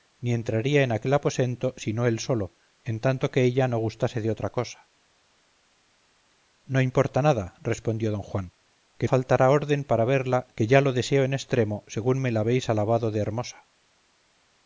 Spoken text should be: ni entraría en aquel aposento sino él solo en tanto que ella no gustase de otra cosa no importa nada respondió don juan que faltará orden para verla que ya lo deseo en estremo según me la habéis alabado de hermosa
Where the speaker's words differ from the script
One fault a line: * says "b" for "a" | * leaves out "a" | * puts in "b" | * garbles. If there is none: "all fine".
all fine